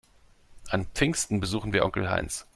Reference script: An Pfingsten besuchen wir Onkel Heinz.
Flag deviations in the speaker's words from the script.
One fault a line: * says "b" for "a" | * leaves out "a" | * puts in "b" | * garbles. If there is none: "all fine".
all fine